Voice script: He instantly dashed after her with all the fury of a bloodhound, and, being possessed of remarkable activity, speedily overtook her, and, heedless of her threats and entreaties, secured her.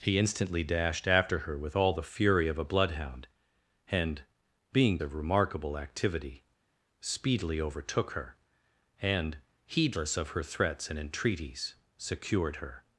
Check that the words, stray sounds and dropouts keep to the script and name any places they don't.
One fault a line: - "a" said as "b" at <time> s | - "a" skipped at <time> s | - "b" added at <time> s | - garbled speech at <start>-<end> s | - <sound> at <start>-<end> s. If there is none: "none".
- "possessed" skipped at 5.0 s